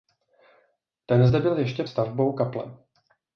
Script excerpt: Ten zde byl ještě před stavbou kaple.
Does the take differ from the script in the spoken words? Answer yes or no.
yes